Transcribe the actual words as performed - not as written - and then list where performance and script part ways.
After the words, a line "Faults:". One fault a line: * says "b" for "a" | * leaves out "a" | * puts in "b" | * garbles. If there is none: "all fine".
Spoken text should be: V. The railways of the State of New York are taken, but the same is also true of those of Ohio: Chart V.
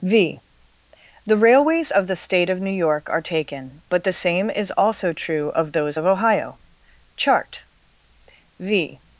V. The railways of the State of New York are taken, but the same is also true of those of Ohio: Chart V.
Faults:
all fine